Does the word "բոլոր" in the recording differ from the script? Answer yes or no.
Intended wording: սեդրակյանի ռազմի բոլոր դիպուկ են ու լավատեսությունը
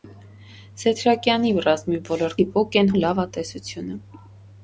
no